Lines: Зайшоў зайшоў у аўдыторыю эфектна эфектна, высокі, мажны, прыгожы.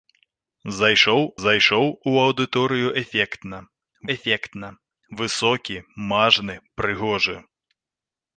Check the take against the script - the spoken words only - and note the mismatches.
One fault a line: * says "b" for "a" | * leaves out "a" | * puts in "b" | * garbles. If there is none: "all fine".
all fine